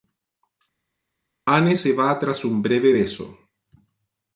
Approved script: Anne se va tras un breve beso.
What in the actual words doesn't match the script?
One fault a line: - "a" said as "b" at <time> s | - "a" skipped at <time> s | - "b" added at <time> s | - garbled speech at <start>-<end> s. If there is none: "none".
none